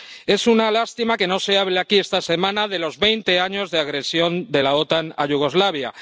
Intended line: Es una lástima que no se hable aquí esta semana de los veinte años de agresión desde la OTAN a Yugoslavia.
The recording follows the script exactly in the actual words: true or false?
false